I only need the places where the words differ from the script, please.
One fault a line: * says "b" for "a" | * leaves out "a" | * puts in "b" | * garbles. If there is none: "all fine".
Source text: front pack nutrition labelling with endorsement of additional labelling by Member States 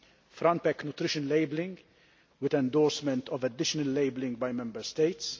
all fine